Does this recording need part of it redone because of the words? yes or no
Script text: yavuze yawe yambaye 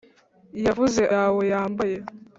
no